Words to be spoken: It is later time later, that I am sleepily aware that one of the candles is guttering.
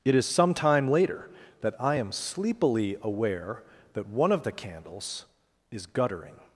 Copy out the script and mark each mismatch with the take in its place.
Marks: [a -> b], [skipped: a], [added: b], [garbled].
It is [later -> some] time later, that I am sleepily aware that one of the candles is guttering.